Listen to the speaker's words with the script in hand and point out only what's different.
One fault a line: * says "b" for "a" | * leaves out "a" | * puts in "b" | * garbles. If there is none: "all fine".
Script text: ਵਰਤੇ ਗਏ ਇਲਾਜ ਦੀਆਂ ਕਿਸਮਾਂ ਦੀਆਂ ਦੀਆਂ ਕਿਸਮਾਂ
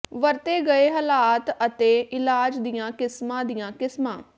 * puts in "ਹਾਲਾਤ ਅਤੇ"
* leaves out "ਦੀਆਂ"